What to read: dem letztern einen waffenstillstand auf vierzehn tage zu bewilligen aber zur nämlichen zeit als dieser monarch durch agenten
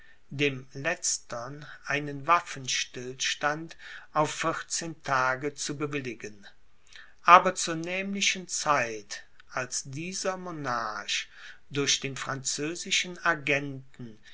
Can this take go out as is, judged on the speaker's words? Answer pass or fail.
fail